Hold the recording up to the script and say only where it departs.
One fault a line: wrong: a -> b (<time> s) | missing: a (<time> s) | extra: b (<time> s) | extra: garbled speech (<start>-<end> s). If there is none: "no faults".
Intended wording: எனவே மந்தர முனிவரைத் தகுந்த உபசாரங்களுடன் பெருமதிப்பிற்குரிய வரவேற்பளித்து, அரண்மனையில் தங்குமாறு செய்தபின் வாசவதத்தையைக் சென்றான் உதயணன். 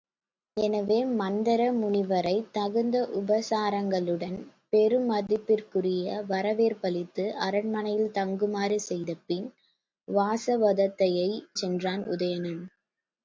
no faults